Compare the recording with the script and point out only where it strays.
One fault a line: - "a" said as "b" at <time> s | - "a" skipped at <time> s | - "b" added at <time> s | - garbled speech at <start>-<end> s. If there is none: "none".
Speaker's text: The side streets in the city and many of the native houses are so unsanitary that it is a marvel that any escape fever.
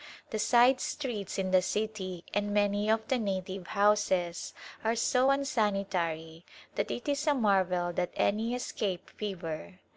none